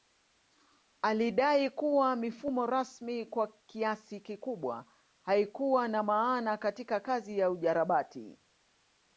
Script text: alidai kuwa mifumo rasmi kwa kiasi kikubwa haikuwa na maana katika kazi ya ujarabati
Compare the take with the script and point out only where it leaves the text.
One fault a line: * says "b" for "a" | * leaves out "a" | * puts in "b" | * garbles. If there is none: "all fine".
all fine